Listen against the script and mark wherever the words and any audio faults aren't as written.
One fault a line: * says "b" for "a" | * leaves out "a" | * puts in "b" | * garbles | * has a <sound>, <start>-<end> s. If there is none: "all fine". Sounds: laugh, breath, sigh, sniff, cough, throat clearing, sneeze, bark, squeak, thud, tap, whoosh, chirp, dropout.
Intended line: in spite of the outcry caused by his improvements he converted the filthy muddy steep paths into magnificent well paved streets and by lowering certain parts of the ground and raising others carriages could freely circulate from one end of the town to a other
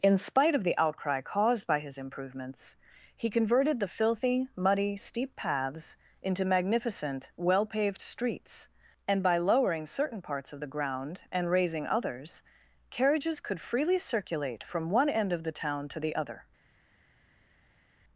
* says "the" for "a"